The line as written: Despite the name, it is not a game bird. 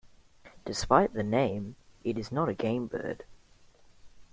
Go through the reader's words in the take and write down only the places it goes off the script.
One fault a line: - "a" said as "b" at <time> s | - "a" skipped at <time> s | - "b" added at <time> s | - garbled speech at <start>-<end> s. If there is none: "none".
none